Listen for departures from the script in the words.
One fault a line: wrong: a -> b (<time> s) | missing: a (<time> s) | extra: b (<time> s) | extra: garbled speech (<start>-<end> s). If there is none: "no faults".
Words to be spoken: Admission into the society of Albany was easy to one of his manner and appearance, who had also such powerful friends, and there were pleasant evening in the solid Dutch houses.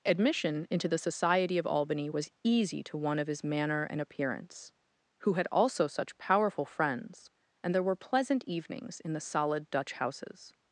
wrong: evening -> evenings (8.5 s)